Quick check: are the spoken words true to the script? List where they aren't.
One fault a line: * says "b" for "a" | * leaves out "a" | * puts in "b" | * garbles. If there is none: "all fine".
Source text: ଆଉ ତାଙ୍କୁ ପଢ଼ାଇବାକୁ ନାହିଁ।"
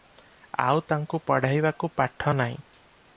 * puts in "ପାଠ"